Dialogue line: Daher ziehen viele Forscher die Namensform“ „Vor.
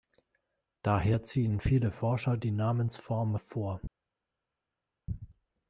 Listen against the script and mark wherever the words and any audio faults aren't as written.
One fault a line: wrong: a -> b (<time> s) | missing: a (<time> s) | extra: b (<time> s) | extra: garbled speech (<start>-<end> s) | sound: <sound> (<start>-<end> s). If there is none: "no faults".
no faults